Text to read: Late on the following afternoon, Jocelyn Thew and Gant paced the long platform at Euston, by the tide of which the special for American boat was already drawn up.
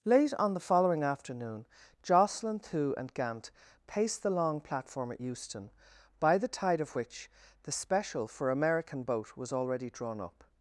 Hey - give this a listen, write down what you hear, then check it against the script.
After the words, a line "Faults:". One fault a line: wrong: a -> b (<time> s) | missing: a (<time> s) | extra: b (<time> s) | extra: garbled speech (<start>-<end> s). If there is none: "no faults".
Late on the following afternoon, Jocelyn Thew and Gant paced the long platform at Euston, by the tide of which the special for American boat was already drawn up.
Faults:
no faults